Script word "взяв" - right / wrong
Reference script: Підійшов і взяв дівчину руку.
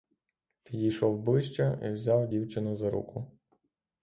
right